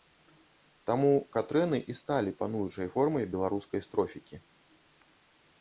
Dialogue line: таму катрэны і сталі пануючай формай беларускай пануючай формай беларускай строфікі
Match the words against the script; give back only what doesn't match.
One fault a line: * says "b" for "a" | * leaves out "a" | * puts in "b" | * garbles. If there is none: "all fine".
* leaves out "пануючай формай беларускай"